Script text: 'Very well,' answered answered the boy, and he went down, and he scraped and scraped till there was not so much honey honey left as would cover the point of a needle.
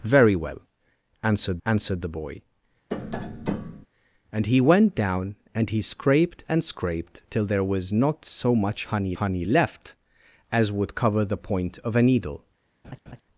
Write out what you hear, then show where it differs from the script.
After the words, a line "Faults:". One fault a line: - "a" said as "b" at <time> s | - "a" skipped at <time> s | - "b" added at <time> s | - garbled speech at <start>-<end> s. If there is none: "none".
'Very well,' answered answered the boy, and he went down, and he scraped and scraped till there was not so much honey honey left as would cover the point of a needle.
Faults:
none